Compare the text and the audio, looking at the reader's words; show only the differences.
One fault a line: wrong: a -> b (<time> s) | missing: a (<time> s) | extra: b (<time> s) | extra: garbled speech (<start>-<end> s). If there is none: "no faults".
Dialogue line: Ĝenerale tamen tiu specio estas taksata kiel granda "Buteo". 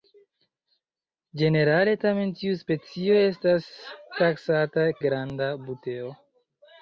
missing: kiel (4.9 s)